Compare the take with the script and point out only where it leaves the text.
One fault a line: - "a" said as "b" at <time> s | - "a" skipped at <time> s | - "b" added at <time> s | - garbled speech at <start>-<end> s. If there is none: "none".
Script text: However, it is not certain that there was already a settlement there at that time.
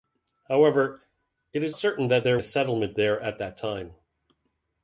- "not" skipped at 1.8 s
- "was already" skipped at 2.4 s